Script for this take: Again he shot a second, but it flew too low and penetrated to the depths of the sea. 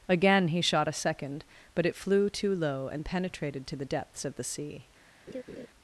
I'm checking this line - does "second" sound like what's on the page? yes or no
yes